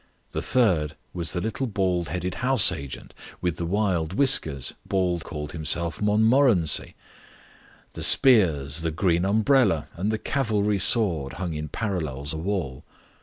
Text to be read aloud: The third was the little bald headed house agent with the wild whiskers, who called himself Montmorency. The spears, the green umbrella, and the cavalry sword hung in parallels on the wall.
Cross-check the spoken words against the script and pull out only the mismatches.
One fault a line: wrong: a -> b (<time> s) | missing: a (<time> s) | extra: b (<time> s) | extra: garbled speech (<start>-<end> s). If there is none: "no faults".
wrong: who -> bald (4.8 s)
missing: on (12.3 s)